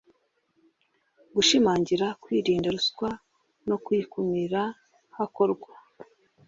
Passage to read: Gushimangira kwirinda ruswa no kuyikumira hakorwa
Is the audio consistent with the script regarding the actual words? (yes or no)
yes